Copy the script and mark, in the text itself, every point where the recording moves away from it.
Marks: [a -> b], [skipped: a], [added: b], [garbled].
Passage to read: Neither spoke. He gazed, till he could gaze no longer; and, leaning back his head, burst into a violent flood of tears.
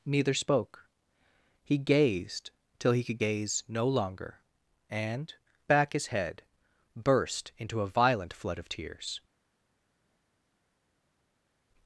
Neither spoke. He gazed, till he could gaze no longer; and, [skipped: leaning] back his head, burst into a violent flood of tears.